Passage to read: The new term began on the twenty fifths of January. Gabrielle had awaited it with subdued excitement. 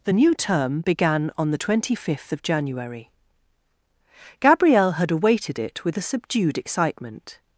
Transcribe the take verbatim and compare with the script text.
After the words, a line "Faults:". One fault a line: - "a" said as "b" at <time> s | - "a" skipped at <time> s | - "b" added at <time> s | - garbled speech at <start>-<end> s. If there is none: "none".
The new term began on the twenty fifth of January. Gabrielle had awaited it with a subdued excitement.
Faults:
- "fifths" said as "fifth" at 1.9 s
- "a" added at 6.0 s